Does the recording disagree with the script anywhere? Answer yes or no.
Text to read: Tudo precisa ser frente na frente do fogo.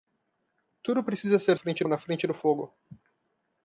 no